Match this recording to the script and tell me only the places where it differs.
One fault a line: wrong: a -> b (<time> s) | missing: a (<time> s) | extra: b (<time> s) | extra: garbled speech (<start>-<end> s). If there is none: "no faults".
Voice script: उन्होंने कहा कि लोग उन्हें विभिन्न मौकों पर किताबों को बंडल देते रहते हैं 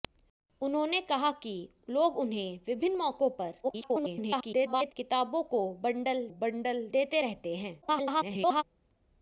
extra: garbled speech (3.6-4.9 s)
extra: बंडल (6.3 s)
extra: garbled speech (7.8-8.6 s)